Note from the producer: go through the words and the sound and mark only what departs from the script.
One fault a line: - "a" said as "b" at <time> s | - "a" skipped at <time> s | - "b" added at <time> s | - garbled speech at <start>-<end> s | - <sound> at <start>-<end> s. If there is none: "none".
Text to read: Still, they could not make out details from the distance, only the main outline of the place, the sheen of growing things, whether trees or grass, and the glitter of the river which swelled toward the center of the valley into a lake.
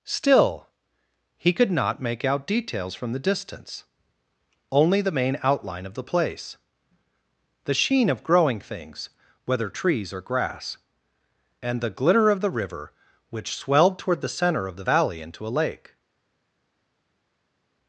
- "they" said as "he" at 1.4 s